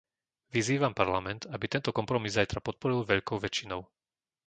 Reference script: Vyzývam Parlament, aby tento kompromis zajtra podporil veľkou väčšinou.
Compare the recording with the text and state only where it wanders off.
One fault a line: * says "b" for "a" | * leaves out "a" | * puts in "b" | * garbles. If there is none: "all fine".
all fine